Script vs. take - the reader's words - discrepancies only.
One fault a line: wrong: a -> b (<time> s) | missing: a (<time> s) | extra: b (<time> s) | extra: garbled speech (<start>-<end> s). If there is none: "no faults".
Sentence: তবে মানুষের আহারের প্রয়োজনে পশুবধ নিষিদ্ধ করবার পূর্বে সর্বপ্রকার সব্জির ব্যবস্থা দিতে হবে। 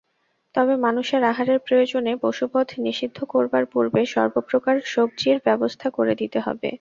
extra: করে (5.9 s)